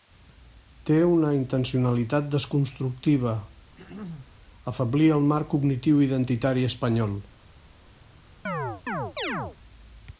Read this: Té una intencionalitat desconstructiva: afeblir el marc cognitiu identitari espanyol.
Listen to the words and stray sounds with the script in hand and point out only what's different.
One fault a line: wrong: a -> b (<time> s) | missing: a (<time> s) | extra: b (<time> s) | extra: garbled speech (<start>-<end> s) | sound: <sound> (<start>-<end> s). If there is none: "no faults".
sound: throat clearing (3.8-4.3 s)
sound: chirp (8.5-9.6 s)